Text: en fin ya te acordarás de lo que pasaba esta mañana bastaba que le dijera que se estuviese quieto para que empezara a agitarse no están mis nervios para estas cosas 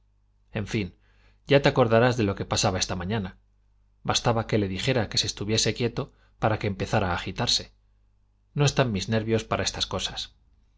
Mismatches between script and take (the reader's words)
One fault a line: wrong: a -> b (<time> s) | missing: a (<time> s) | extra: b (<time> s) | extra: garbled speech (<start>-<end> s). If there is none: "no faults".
no faults